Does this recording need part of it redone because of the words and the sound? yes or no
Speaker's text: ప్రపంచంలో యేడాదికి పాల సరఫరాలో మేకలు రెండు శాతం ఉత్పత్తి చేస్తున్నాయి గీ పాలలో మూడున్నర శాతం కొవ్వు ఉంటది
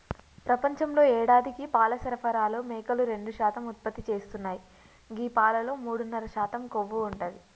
no